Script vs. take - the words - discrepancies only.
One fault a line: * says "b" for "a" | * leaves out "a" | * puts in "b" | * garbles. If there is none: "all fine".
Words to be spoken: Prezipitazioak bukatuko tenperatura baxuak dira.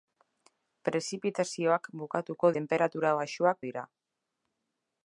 all fine